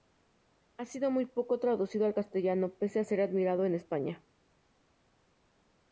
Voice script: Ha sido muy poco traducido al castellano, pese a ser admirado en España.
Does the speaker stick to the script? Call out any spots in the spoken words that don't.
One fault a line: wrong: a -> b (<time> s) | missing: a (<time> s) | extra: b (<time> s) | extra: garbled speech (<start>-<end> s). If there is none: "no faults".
no faults